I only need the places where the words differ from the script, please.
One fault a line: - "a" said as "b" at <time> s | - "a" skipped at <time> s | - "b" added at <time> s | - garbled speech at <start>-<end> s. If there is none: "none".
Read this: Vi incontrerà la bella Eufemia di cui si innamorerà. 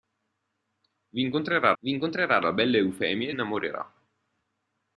- "vi incontrerà" added at 1.8 s
- "di cui si" skipped at 3.3 s